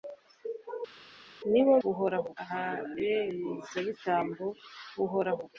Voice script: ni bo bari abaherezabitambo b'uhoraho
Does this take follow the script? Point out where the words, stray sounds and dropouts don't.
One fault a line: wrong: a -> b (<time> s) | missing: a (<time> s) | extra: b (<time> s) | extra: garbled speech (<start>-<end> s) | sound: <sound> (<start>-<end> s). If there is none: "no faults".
wrong: bari -> b'uhoraho (1.8 s)